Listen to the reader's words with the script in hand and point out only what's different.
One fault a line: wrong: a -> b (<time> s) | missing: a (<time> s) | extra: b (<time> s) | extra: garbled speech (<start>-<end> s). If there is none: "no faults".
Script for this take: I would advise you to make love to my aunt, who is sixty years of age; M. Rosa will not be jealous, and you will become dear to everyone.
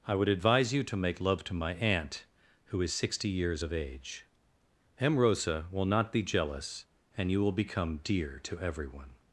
no faults